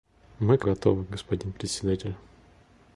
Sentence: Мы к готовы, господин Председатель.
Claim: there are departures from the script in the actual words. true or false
false